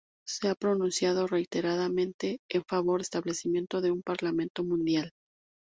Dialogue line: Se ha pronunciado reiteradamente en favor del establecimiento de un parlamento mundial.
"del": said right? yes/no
no